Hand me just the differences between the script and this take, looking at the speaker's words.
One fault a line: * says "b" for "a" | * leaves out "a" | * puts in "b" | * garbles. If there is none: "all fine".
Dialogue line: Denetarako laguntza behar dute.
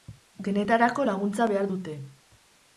all fine